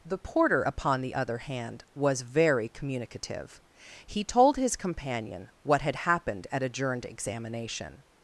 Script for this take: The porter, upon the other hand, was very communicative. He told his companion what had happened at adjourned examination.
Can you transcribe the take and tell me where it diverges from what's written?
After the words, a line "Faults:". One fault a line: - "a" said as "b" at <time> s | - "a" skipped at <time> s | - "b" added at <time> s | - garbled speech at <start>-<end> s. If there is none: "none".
The porter, upon the other hand, was very communicative. He told his companion what had happened at adjourned examination.
Faults:
none